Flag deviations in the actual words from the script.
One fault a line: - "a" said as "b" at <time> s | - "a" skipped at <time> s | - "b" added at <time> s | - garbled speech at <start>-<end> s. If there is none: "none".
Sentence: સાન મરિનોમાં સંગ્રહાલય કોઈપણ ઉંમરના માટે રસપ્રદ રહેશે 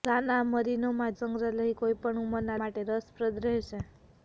none